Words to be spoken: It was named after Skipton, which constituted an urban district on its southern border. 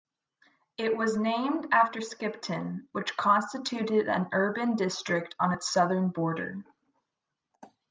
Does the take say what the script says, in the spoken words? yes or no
yes